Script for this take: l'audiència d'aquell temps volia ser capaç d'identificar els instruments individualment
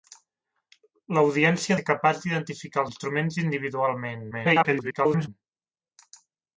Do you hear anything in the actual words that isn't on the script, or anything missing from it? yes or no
yes